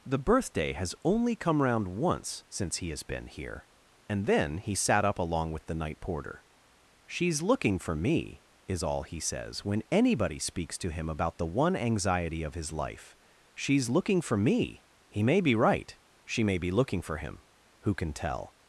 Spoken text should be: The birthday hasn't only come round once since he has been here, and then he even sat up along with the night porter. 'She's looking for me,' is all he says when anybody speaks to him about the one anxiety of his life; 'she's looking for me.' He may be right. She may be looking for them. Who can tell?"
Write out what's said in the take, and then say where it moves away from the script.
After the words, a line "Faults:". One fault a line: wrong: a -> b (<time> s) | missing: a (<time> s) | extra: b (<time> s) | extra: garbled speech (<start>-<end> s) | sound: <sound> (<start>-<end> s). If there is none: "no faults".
The birthday has only come round once since he has been here, and then he sat up along with the night porter. 'She's looking for me,' is all he says when anybody speaks to him about the one anxiety of his life; 'she's looking for me.' He may be right. She may be looking for him. Who can tell?"
Faults:
wrong: hasn't -> has (0.7 s)
missing: even (4.7 s)
wrong: them -> him (17.2 s)